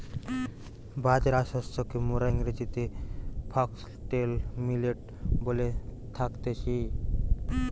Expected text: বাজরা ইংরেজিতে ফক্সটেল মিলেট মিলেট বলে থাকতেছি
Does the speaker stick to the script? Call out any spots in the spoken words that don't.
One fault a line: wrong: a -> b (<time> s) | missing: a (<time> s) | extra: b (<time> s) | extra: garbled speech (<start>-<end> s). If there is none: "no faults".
extra: শস্যকে মোরা (1.4 s)
missing: মিলেট (5.0 s)